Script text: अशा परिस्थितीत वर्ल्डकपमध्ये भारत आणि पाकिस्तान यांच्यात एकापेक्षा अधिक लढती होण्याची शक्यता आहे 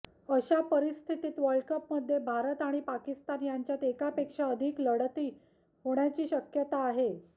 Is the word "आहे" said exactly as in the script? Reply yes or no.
yes